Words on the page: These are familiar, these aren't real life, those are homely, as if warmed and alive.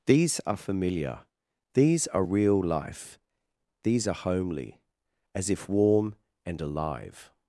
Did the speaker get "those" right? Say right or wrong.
wrong